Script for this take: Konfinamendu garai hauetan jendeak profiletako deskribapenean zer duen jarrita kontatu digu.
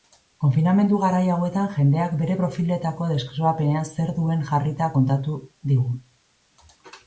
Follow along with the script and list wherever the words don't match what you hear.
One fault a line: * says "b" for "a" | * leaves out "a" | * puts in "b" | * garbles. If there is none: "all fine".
* puts in "bere"